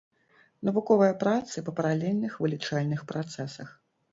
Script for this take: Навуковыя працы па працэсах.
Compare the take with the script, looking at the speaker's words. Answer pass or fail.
fail